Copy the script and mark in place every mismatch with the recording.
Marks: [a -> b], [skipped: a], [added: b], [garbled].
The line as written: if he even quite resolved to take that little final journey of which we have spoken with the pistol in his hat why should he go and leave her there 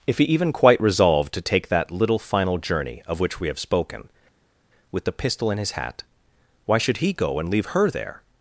if he even quite resolved to take that little final journey of which we have spoken with the pistol in his hat why should he go and leave her there